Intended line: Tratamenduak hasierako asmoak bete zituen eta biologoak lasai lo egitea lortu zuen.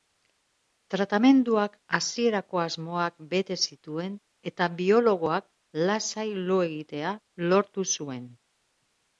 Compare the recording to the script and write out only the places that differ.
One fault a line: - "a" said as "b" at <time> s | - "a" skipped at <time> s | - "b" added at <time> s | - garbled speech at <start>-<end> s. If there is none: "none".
none